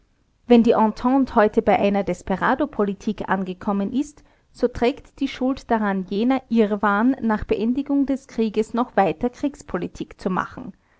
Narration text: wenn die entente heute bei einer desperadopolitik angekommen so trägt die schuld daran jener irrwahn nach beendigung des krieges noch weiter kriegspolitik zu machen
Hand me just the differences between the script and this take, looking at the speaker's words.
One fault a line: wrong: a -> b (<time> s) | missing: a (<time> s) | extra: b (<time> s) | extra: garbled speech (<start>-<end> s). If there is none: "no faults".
extra: ist (3.9 s)